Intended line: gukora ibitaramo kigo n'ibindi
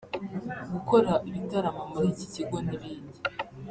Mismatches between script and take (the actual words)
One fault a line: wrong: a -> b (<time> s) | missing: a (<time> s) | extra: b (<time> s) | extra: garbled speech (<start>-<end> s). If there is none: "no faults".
extra: muri iki (1.9 s)